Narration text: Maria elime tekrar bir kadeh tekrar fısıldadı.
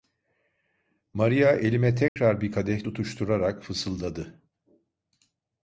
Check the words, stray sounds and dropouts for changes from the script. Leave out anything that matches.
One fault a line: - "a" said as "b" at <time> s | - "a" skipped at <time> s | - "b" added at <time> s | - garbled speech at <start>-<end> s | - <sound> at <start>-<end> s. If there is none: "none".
- dropout at 2.1-2.2 s
- "tekrar" said as "tutuşturarak" at 2.8 s